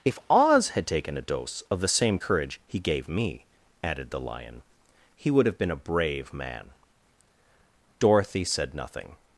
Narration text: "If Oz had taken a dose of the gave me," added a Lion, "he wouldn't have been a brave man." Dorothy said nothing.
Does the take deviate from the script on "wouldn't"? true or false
true